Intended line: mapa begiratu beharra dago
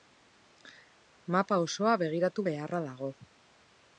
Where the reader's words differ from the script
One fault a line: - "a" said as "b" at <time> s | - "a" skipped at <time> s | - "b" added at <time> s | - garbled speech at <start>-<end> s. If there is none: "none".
- "osoa" added at 1.7 s